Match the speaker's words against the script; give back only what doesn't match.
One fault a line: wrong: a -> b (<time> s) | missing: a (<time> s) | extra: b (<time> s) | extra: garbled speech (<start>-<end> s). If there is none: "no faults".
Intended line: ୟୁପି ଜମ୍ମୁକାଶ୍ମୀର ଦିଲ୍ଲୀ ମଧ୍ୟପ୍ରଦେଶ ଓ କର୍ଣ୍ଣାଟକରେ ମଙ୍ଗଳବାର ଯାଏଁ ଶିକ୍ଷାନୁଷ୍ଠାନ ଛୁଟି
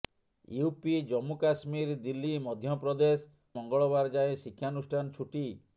missing: ଓ କର୍ଣ୍ଣାଟକରେ (3.3 s)